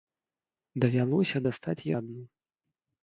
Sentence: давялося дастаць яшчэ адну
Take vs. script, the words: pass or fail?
fail